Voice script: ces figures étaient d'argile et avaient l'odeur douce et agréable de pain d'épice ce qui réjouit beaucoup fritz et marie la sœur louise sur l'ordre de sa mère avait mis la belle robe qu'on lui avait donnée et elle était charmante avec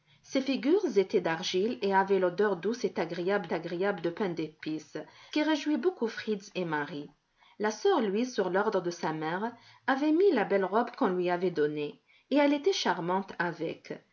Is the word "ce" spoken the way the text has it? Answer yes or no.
no